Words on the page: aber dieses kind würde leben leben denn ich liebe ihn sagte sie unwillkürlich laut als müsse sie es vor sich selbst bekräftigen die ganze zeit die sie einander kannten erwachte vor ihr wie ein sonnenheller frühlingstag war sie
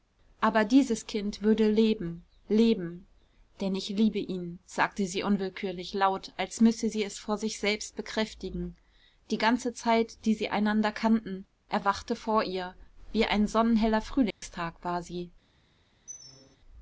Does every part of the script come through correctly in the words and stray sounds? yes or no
no